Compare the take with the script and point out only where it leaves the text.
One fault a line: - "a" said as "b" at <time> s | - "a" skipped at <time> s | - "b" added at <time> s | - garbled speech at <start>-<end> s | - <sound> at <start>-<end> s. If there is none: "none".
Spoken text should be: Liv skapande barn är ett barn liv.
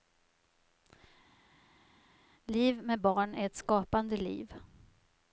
- "skapande" said as "med" at 2.8 s
- "barn" said as "skapande" at 3.5 s